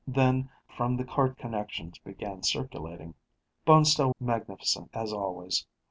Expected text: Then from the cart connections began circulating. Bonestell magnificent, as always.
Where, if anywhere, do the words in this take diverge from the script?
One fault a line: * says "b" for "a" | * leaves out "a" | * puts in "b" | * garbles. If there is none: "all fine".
all fine